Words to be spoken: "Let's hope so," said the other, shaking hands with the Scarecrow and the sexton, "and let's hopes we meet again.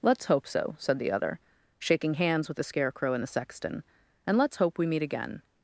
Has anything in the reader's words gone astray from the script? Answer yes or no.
yes